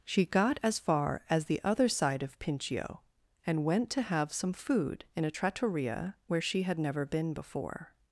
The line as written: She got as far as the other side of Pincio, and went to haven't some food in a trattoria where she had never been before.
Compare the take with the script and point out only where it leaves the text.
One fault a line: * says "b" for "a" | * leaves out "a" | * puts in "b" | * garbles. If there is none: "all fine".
* says "have" for "haven't"